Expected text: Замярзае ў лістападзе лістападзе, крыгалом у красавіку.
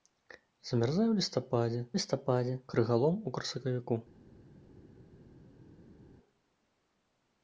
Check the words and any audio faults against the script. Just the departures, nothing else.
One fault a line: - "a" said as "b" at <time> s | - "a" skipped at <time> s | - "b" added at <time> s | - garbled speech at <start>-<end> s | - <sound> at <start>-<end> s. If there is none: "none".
none